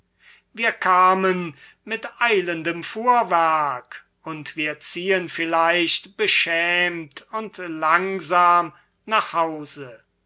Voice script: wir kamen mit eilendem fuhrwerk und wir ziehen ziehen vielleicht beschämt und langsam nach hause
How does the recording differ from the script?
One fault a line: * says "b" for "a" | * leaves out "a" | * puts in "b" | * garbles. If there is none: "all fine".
* leaves out "ziehen"